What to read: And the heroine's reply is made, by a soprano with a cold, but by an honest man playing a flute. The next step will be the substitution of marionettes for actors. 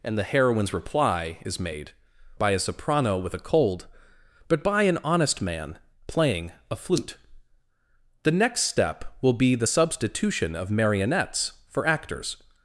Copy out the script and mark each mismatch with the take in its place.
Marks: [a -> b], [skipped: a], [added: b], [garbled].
And the heroine's reply is made, by a soprano with a cold, but by an honest man playing a flute. The next step will be the substitution of marionettes for actors.